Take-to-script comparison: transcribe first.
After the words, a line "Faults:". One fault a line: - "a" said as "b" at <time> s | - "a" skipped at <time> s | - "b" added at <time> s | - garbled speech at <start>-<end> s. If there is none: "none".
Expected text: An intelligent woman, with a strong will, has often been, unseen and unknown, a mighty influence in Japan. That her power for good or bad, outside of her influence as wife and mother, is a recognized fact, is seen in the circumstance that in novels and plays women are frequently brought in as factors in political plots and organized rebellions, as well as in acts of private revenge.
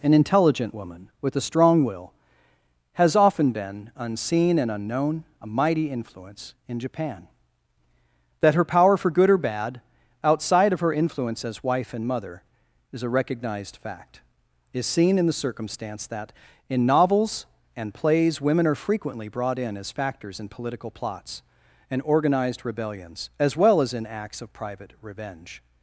An intelligent woman, with a strong will, has often been, unseen and unknown, a mighty influence in Japan. That her power for good or bad, outside of her influence as wife and mother, is a recognized fact, is seen in the circumstance that in novels and plays women are frequently brought in as factors in political plots and organized rebellions, as well as in acts of private revenge.
Faults:
none